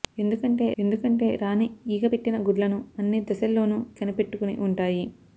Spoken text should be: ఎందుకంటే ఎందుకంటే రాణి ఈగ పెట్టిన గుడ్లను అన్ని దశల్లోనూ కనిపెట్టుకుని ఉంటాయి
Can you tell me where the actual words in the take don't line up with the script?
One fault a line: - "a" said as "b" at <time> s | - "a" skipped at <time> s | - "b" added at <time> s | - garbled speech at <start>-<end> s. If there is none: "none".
none